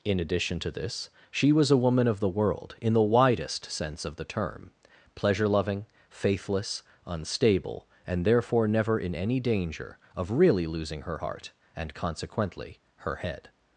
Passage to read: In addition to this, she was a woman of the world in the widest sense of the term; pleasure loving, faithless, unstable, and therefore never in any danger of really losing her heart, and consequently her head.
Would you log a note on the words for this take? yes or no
no